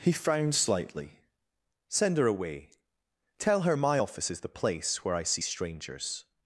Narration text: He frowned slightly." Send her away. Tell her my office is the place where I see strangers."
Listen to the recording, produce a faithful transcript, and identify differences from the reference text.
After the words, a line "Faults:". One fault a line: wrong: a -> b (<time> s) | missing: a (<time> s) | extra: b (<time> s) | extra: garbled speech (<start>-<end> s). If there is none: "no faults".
He frowned slightly." Send her away. Tell her my office is the place where I see strangers."
Faults:
no faults